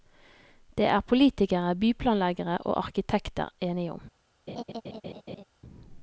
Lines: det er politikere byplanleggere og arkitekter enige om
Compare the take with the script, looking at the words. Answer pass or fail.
pass